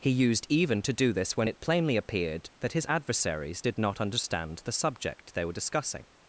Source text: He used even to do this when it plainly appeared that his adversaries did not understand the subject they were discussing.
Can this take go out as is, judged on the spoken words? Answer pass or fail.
pass